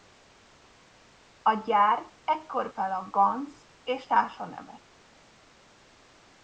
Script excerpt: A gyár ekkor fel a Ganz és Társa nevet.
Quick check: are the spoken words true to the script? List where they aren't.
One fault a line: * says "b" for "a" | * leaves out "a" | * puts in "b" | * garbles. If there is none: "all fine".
all fine